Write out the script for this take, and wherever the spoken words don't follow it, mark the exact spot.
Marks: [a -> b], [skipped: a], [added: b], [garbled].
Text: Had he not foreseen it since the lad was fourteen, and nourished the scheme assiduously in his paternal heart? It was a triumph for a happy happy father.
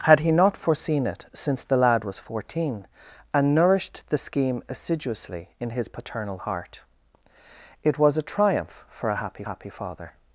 Had he not foreseen it since the lad was fourteen, and nourished the scheme assiduously in his paternal heart? It was a triumph for a happy happy father.